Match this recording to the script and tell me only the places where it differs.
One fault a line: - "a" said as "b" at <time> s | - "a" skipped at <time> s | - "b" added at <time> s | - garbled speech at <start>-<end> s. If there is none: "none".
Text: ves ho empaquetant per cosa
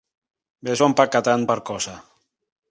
none